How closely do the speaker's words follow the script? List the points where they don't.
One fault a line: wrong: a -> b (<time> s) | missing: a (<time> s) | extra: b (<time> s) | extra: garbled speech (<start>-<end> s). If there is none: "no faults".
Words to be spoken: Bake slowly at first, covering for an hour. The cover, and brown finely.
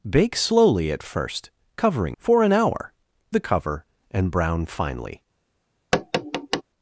no faults